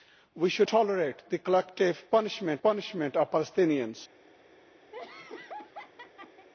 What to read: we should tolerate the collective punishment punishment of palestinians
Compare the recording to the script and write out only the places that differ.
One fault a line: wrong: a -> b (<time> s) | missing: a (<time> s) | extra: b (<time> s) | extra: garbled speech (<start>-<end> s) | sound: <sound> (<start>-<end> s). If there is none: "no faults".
sound: laugh (4.9-6.5 s)